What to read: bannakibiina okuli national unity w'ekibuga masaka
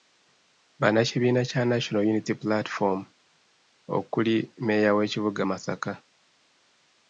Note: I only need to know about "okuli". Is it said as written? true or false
false